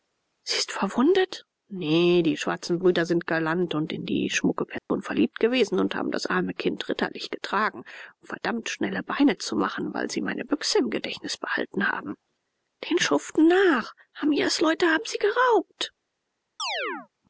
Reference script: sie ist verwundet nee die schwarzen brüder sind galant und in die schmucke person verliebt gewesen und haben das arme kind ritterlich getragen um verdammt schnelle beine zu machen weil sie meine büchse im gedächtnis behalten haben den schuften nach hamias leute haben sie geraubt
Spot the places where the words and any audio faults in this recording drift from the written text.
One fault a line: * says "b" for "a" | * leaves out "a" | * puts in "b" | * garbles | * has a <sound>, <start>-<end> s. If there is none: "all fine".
* has a dropout, 4.8-4.9 s
* has a chirp, 16.6-17.1 s